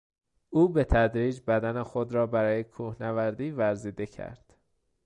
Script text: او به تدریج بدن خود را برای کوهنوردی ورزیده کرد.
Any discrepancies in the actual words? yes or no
no